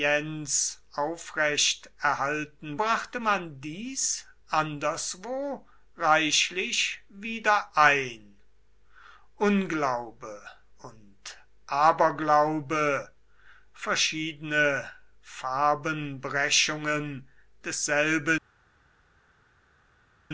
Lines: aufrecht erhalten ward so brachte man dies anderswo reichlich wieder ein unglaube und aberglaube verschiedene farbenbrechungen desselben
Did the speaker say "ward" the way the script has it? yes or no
no